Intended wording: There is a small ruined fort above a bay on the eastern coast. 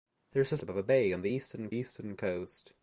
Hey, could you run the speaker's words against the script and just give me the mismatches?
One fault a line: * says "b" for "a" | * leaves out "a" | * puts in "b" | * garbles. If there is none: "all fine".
* leaves out "small ruined fort"
* puts in "eastern"